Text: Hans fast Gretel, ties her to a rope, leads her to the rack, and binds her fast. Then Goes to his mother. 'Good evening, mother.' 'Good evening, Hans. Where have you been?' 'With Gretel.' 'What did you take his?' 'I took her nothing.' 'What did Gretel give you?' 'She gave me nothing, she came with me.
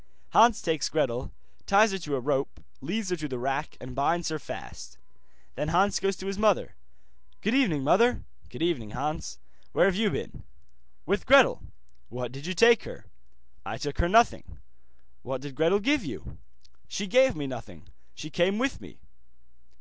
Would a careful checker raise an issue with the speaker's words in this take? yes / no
yes